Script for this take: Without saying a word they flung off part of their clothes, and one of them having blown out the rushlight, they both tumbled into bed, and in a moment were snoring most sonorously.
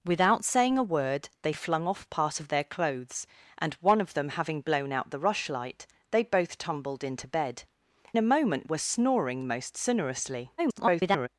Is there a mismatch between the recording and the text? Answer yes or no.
yes